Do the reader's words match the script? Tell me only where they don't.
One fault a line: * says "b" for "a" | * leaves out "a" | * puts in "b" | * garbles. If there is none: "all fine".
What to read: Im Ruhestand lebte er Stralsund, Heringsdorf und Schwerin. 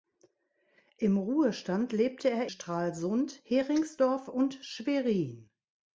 all fine